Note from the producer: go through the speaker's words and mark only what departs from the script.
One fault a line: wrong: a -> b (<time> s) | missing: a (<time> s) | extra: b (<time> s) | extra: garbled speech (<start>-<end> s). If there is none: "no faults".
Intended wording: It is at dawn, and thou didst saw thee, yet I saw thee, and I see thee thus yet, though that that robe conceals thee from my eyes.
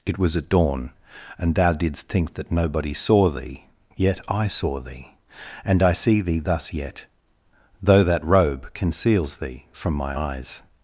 wrong: is -> was (0.2 s)
extra: think that nobody (2.1 s)
missing: that (8.2 s)